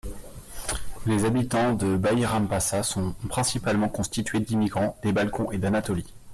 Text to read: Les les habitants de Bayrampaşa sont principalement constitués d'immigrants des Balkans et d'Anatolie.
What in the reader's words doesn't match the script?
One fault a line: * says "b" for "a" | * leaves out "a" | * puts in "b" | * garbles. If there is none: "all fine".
* leaves out "les"